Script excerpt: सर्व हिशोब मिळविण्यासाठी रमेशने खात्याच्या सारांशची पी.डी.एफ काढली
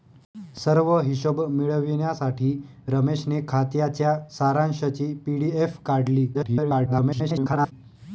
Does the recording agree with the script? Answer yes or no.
no